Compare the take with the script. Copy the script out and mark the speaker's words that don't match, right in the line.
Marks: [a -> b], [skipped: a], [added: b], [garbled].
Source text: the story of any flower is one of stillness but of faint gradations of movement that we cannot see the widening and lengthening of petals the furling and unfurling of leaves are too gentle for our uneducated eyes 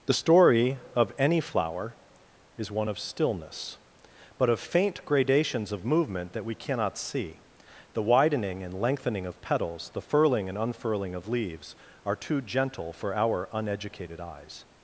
the story of any flower is one of stillness but of faint gradations of movement that we cannot see the widening and lengthening of petals the furling and unfurling of leaves are too gentle for our uneducated eyes